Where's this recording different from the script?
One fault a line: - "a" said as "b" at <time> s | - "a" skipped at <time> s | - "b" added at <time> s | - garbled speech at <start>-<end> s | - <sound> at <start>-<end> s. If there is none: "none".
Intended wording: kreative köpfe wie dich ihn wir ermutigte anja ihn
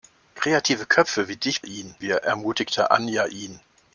none